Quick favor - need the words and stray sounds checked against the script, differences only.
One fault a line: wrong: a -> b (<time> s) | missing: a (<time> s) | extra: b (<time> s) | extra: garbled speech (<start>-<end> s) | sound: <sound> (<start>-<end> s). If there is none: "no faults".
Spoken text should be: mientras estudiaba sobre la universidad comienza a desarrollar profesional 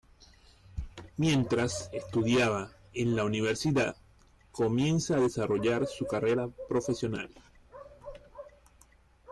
wrong: sobre -> en (2.9 s)
extra: su carrera (5.9 s)